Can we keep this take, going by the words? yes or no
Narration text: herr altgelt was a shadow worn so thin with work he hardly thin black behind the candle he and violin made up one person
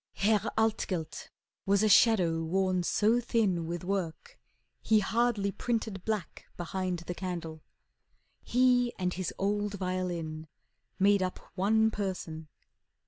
no